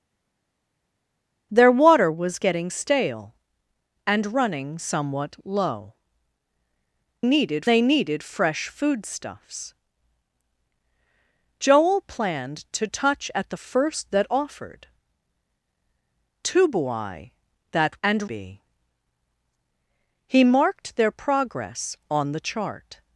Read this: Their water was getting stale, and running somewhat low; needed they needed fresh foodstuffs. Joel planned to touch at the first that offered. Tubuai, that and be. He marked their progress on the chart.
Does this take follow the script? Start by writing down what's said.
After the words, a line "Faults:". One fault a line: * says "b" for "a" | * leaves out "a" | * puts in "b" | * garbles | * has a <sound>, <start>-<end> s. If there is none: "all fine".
Their water was getting stale, and running somewhat low; needed they needed fresh foodstuffs. Joel planned to touch at the first that offered. Tubuai, that and be. He marked their progress on the chart.
Faults:
all fine